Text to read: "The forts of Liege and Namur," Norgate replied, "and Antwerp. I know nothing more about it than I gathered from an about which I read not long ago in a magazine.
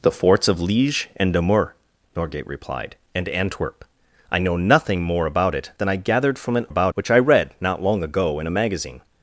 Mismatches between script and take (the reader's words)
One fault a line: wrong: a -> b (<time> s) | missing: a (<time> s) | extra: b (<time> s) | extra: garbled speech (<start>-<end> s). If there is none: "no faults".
no faults